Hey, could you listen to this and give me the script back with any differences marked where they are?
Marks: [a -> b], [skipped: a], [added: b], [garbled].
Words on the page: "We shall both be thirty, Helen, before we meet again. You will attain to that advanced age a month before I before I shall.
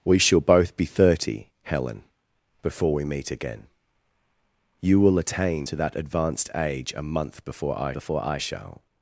"We shall both be thirty, Helen, before we meet again. You will attain to that advanced age a month before I before I shall.